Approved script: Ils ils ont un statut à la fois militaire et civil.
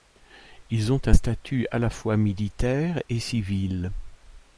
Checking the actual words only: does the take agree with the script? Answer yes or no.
no